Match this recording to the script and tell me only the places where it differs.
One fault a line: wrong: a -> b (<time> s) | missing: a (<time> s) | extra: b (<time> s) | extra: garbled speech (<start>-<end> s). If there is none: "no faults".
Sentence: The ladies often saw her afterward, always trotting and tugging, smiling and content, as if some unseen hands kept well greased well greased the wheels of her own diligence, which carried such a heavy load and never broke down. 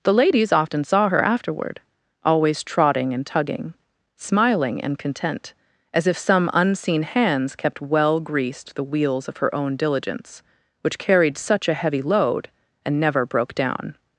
missing: well greased (8.8 s)